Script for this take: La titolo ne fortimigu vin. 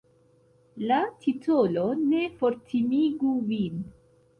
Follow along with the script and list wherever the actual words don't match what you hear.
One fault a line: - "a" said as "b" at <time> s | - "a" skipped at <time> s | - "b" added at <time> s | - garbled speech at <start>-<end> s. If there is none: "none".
none